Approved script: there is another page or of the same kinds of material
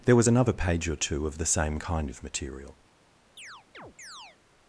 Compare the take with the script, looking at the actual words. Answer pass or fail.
fail